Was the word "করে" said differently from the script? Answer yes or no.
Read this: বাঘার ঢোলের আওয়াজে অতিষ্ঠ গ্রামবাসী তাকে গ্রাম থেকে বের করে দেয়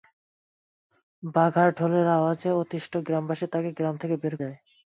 yes